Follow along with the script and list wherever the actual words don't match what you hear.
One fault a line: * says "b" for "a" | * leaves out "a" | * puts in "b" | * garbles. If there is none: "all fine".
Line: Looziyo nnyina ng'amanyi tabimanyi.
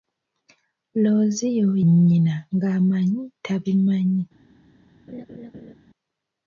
all fine